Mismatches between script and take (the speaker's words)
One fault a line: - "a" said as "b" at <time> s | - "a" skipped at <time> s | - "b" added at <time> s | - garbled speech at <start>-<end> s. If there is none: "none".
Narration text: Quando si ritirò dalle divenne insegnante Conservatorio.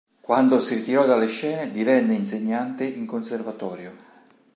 - "scene" added at 1.3 s
- "in" added at 2.9 s